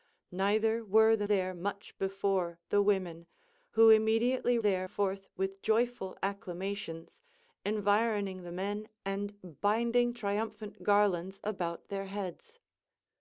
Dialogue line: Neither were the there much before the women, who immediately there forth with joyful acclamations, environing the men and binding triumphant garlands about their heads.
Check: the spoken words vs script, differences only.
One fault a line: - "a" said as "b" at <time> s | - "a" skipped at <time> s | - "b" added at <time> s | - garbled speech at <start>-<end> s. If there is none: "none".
none